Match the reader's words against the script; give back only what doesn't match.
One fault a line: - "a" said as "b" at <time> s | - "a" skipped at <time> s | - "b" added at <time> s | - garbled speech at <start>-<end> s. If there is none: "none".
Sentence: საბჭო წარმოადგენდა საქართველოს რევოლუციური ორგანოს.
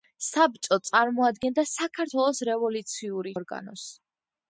none